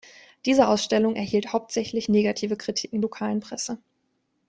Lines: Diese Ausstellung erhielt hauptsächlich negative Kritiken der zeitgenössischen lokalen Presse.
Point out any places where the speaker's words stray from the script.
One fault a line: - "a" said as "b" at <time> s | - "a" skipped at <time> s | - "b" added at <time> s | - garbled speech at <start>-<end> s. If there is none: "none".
- "der zeitgenössischen" skipped at 3.0 s